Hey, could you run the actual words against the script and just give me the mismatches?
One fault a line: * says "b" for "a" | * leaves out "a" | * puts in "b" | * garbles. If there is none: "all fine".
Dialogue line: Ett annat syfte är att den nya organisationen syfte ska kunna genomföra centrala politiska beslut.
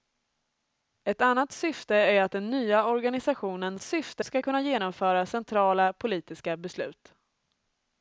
all fine